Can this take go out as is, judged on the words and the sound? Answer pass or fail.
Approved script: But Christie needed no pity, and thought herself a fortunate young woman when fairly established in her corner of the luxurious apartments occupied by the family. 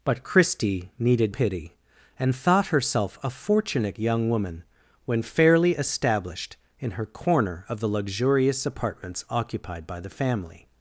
fail